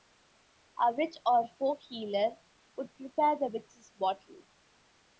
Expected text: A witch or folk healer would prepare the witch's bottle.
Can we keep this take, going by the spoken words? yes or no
yes